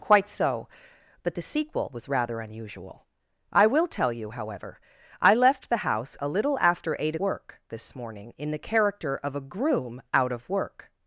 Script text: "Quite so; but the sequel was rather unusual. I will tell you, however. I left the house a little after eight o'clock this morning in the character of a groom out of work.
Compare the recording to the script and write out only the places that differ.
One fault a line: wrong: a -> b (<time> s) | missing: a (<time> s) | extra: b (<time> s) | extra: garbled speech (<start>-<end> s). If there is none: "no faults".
wrong: o'clock -> work (7.2 s)